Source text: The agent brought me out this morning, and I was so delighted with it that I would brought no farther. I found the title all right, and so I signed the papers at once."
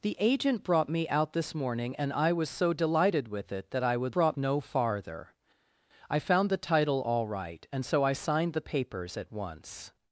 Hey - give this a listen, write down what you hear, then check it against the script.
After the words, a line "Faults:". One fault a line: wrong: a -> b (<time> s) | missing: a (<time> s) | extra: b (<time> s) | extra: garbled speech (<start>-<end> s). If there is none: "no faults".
The agent brought me out this morning, and I was so delighted with it that I would brought no farther. I found the title all right, and so I signed the papers at once."
Faults:
no faults